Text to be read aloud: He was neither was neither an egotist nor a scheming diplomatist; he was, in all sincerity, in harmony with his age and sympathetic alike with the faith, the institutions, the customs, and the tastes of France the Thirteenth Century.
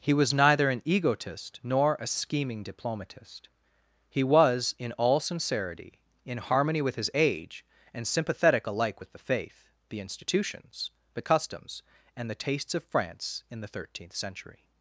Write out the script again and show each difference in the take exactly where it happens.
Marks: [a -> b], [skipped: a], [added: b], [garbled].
He was neither [skipped: was neither] an egotist nor a scheming diplomatist; he was, in all sincerity, in harmony with his age and sympathetic alike with the faith, the institutions, the customs, and the tastes of France [added: in] the Thirteenth Century.